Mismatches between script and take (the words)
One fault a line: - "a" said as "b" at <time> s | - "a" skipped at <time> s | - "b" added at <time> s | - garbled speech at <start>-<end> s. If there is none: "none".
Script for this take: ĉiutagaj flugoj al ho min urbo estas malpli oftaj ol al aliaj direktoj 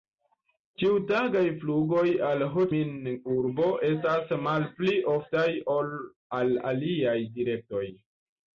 none